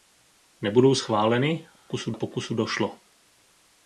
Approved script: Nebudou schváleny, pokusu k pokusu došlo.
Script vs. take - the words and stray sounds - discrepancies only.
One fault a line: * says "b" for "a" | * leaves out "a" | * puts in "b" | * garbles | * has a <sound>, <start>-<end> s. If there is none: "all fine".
* has a dropout, 1.8-1.9 s